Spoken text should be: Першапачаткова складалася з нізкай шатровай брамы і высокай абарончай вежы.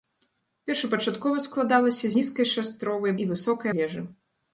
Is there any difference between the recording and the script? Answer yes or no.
yes